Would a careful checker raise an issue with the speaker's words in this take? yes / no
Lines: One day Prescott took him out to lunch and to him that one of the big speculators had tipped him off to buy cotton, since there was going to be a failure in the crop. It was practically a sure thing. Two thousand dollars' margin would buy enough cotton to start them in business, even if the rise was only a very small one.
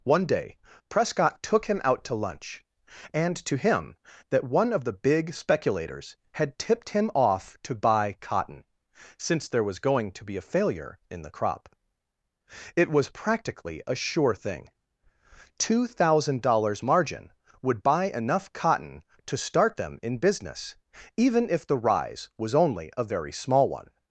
no